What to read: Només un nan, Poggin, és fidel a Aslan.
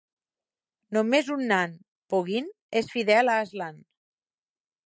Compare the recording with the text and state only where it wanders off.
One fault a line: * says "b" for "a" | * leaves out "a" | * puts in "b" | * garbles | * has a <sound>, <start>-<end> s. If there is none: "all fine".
all fine